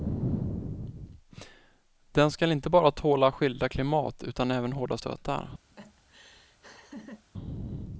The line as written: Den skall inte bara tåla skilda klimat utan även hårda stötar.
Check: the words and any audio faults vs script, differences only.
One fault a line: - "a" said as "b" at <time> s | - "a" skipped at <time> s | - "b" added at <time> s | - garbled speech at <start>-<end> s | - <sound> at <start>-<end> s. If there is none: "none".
- laugh at 5.7-7.3 s